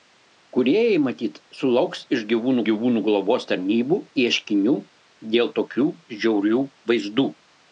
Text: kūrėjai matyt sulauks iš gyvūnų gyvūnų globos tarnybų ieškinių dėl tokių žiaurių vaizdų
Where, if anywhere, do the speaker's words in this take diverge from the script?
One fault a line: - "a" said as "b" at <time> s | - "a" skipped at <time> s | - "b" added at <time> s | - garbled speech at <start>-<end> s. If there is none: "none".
none